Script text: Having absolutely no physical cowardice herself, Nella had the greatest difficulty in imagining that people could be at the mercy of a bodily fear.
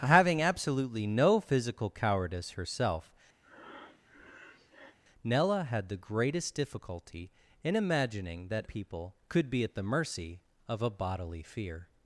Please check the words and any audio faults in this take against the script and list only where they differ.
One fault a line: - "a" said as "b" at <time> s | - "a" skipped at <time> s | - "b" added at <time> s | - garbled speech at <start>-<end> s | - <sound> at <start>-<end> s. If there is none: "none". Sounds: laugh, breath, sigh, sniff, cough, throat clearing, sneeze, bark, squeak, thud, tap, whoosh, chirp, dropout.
- breath at 3.4-5.0 s